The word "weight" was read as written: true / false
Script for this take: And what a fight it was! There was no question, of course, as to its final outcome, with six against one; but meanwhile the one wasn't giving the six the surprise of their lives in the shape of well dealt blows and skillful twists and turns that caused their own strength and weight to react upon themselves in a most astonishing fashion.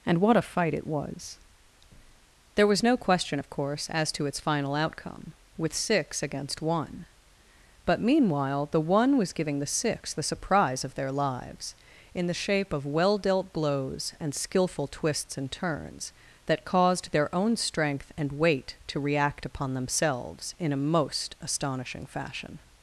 true